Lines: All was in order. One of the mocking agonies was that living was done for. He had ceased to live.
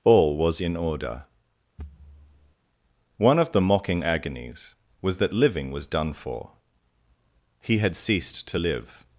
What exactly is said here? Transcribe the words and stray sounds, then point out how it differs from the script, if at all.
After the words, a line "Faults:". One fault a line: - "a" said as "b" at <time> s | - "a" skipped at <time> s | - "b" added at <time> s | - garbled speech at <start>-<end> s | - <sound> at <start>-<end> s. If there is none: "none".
All was in order. One of the mocking agonies was that living was done for. He had ceased to live.
Faults:
- thud at 1.8-2.5 s